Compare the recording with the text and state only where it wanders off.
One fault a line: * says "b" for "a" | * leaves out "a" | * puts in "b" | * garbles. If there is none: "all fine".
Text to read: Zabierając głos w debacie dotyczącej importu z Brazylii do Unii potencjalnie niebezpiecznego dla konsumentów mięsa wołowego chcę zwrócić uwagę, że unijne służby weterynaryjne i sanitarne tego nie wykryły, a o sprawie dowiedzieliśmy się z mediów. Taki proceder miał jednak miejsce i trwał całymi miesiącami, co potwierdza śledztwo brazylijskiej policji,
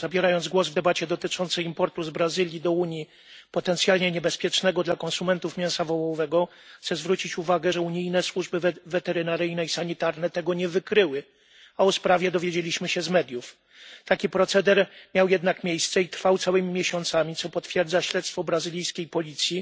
all fine